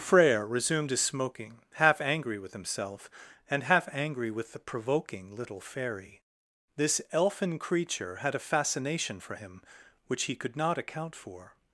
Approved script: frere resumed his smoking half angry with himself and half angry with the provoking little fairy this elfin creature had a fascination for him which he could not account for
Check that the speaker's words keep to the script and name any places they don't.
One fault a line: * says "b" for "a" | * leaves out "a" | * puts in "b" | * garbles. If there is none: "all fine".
all fine